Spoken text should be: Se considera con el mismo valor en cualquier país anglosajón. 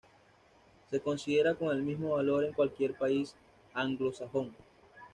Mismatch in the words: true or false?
false